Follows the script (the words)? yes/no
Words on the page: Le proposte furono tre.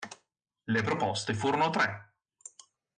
yes